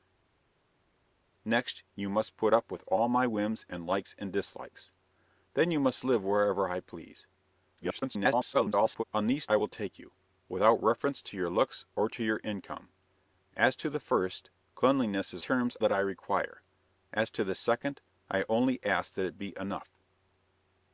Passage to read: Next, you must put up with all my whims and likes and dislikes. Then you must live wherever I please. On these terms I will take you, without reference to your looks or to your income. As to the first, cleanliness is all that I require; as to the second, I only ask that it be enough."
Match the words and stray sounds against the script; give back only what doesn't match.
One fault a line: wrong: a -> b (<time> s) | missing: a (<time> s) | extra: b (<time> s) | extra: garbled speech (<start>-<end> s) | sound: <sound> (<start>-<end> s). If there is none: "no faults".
extra: garbled speech (7.8-9.0 s)
missing: terms (9.5 s)
wrong: all -> terms (15.4 s)